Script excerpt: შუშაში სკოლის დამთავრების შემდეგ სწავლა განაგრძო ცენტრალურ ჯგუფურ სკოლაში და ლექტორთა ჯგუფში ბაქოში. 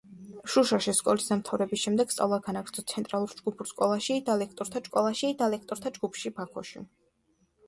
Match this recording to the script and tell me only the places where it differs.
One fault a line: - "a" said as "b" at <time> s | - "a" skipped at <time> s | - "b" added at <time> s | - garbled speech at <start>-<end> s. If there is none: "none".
- "სკოლაში და ლექტორთა" added at 4.9 s